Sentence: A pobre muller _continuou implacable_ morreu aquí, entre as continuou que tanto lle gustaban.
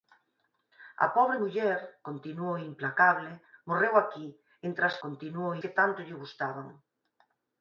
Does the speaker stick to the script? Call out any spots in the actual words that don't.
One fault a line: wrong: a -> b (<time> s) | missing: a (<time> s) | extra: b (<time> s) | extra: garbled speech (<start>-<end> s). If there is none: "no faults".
no faults